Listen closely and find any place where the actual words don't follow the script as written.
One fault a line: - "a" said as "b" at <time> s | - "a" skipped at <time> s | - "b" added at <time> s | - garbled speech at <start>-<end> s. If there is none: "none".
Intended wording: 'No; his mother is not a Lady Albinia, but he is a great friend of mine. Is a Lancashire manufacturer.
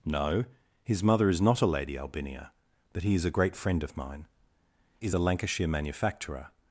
none